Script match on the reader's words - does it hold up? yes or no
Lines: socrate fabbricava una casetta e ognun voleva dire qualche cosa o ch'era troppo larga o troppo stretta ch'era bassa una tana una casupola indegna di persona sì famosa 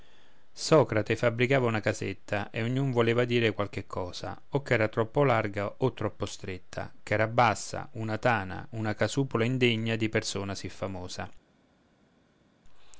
yes